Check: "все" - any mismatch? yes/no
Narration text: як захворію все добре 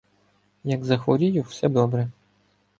no